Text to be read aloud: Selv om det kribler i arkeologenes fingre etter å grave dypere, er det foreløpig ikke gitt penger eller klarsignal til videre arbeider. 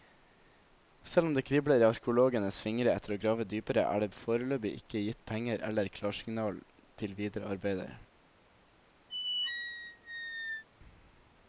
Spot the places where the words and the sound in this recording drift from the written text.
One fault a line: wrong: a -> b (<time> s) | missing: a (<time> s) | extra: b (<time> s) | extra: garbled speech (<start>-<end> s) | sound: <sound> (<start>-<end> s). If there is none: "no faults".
sound: squeak (9.1-10.6 s)